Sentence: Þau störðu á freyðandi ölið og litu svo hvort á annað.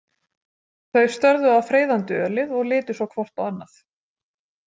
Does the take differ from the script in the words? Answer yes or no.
no